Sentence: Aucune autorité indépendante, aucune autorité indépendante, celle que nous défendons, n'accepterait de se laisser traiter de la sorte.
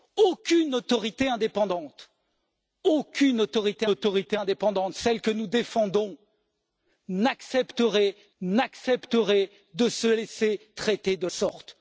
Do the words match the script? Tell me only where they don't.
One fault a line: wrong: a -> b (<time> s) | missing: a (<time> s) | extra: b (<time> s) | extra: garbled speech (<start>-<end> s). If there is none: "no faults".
extra: autorité (3.9 s)
extra: n'accepterait (8.4 s)
missing: la (11.3 s)